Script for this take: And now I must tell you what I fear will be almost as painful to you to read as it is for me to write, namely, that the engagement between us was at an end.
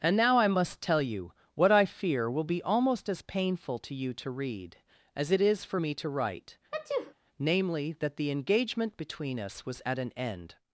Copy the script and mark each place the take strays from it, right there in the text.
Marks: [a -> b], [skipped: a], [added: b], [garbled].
And now I must tell you what I fear will be almost as painful to you to read as it is for me to write, namely, that the engagement between us was at an end.